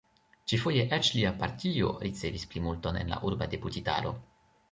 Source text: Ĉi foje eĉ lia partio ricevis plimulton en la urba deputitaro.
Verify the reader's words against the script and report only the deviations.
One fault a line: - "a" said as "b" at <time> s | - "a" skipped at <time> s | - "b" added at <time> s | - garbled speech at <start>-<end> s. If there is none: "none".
none